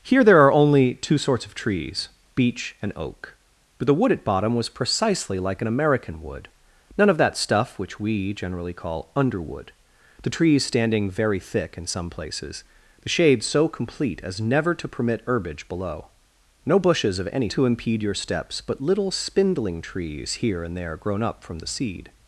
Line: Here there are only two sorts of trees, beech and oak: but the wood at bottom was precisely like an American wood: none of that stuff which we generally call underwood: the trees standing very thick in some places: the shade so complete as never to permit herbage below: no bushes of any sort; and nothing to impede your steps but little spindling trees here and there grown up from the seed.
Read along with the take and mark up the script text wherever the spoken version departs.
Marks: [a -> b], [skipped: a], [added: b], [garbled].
Here there are only two sorts of trees, beech and oak: but the wood at bottom was precisely like an American wood: none of that stuff which we generally call underwood: the trees standing very thick in some places: the shade so complete as never to permit herbage below: no bushes of any [skipped: sort; and nothing] to impede your steps but little spindling trees here and there grown up from the seed.